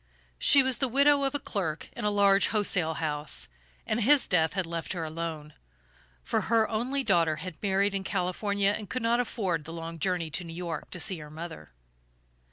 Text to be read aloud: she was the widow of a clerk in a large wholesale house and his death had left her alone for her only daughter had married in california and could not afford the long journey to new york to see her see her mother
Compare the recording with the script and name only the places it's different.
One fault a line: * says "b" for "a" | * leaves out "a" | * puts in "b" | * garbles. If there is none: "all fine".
* leaves out "see her"